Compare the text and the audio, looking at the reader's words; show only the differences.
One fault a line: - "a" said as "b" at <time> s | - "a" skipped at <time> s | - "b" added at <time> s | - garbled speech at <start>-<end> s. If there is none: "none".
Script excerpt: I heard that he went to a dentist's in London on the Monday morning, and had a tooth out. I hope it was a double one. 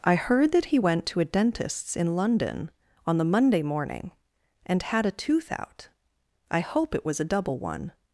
none